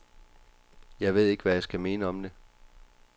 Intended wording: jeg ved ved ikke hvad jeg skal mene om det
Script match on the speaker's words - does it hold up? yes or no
no